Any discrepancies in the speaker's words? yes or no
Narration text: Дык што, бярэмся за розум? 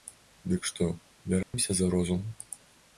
no